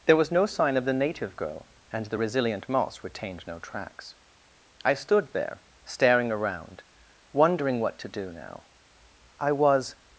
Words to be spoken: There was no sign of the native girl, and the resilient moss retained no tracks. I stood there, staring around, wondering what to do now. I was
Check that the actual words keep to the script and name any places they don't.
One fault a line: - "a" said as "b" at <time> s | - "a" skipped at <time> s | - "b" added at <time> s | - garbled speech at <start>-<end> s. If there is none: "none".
none